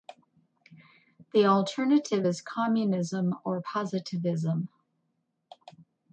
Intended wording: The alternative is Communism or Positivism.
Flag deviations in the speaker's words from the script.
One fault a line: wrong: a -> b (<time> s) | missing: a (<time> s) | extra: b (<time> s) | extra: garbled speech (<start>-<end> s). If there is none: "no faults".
no faults